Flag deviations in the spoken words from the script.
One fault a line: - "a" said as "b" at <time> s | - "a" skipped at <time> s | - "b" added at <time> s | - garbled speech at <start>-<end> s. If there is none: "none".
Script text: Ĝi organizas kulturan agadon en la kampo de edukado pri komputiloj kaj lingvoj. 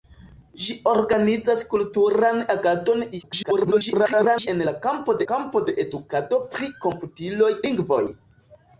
- garbled speech at 3.1-4.5 s
- "kampo" added at 5.3 s
- "kaj" skipped at 7.5 s